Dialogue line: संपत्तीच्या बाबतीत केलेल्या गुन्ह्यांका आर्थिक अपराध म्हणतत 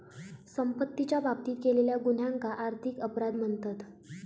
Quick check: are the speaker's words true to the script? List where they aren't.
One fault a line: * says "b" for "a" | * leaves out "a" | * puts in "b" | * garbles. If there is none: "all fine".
all fine